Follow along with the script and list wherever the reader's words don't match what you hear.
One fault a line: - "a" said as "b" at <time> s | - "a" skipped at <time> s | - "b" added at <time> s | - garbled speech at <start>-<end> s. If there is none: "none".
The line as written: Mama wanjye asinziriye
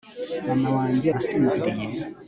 none